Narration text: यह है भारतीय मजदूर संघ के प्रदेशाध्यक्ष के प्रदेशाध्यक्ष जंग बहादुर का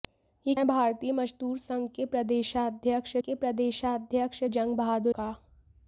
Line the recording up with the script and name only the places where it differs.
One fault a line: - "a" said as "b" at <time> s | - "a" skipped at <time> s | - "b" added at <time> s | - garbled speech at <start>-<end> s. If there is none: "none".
none